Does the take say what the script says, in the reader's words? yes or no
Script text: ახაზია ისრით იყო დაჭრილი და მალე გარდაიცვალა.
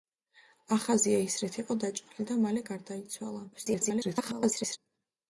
no